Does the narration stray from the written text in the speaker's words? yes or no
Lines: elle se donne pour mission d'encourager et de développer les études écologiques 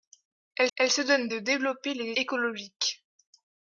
yes